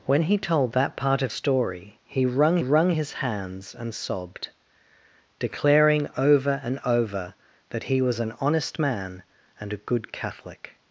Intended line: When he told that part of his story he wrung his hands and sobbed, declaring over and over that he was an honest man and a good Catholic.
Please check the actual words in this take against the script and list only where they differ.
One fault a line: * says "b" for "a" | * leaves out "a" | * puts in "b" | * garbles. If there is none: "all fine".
* leaves out "his"
* puts in "wrung"